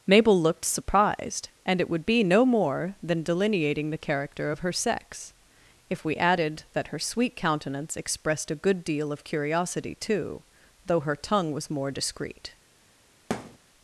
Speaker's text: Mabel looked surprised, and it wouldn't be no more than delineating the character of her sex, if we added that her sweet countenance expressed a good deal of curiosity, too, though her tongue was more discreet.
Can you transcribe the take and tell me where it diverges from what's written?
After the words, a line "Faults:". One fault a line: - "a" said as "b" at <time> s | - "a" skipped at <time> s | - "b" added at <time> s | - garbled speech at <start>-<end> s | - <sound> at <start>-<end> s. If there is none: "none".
Mabel looked surprised, and it would be no more than delineating the character of her sex, if we added that her sweet countenance expressed a good deal of curiosity, too, though her tongue was more discreet.
Faults:
- "wouldn't" said as "would" at 1.9 s
- thud at 13.3-13.6 s